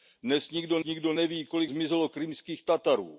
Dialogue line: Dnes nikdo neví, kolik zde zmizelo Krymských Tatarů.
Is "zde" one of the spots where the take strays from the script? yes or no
yes